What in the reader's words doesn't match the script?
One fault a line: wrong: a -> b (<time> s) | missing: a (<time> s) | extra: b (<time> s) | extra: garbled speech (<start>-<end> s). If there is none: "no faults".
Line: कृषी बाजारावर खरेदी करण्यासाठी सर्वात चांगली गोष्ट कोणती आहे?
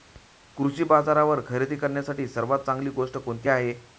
no faults